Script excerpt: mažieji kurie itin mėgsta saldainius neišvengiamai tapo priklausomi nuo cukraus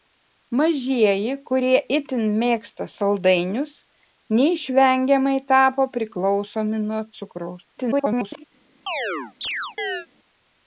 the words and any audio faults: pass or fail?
fail